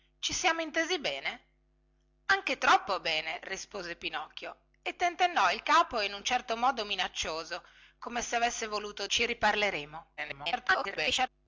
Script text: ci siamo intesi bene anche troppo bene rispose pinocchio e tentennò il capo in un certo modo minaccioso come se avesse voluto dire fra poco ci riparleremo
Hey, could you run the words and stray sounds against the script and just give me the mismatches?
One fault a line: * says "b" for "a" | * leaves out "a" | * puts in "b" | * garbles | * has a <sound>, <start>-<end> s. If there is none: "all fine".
* leaves out "dire fra poco"
* garbles